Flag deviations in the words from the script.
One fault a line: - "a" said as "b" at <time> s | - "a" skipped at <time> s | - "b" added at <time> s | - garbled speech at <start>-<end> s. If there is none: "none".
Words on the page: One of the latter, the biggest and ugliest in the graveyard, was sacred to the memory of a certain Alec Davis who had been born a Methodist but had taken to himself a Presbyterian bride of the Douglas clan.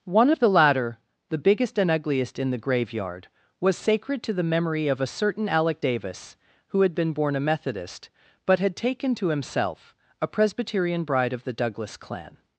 none